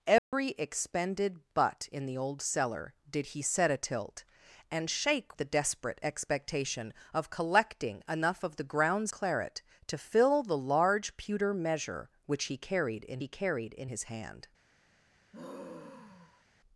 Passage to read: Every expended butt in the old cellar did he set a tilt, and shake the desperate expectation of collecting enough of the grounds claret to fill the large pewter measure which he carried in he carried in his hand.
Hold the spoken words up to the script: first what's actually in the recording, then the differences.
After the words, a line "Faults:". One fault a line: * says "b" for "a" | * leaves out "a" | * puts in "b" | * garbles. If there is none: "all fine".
Every expended butt in the old cellar did he set a tilt, and shake the desperate expectation of collecting enough of the grounds claret to fill the large pewter measure which he carried in he carried in his hand.
Faults:
all fine